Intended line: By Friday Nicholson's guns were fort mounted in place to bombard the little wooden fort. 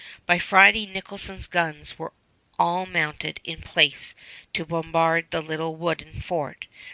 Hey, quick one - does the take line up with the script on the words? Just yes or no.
no